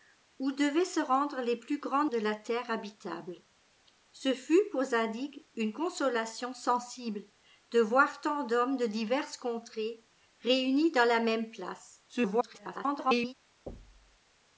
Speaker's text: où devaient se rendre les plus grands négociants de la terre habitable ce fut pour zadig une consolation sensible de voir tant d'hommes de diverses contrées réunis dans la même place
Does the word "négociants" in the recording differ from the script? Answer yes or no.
yes